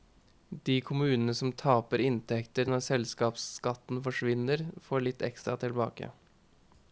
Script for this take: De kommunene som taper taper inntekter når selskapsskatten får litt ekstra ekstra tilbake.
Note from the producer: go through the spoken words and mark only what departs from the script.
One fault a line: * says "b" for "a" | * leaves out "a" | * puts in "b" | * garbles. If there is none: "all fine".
* leaves out "taper"
* puts in "forsvinner"
* leaves out "ekstra"